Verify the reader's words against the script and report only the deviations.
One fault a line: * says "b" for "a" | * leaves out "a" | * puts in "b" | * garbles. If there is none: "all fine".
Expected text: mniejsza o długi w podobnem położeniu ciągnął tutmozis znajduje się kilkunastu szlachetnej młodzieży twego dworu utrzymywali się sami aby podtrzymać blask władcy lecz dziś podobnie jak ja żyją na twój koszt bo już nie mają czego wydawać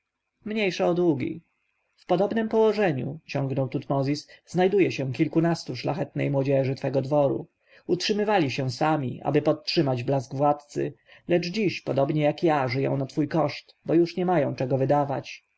all fine